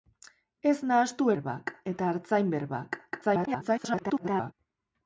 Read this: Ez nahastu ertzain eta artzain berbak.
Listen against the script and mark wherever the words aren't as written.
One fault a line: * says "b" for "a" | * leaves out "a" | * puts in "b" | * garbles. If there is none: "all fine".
* says "berbak" for "ertzain"
* garbles